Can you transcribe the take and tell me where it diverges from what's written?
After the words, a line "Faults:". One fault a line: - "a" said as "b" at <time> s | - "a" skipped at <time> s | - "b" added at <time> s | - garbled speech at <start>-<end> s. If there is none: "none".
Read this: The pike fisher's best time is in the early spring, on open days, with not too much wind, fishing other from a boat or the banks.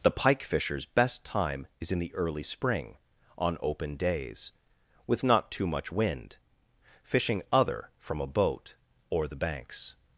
The pike fisher's best time is in the early spring, on open days, with not too much wind, fishing other from a boat or the banks.
Faults:
none